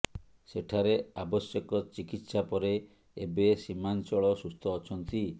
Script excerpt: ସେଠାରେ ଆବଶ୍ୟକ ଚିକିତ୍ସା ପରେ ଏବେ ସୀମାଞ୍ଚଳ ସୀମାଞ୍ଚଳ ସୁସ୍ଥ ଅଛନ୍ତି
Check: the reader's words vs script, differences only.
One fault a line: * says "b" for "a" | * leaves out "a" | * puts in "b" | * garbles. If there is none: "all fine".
* leaves out "ସୀମାଞ୍ଚଳ"